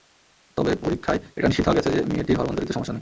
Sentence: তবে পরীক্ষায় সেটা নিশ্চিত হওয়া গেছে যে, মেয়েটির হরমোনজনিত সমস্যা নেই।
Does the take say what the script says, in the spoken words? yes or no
no